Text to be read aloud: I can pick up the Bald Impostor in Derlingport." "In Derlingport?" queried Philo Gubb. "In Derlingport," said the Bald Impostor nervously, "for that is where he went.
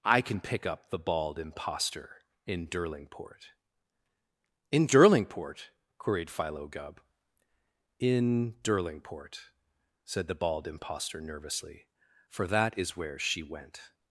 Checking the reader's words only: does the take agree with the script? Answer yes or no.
no